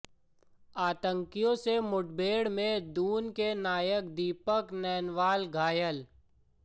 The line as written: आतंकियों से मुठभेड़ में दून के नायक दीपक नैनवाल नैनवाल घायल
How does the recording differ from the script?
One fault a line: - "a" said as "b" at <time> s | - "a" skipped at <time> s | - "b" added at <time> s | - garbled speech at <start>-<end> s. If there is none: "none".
- "नैनवाल" skipped at 5.5 s